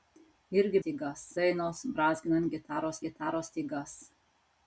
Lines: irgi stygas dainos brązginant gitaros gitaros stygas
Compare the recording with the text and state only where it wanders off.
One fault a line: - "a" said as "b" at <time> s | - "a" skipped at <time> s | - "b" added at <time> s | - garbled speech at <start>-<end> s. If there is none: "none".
none